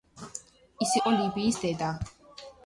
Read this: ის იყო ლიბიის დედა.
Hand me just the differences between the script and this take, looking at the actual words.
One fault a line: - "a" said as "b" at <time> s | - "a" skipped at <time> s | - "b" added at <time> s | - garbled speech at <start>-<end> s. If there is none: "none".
none